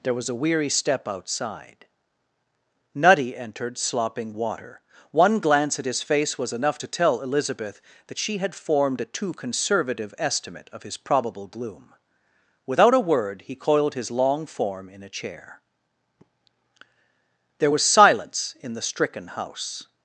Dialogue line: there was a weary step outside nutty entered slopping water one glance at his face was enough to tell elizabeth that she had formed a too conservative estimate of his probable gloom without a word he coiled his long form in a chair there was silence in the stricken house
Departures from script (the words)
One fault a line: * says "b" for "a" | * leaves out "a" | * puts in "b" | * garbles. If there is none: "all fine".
all fine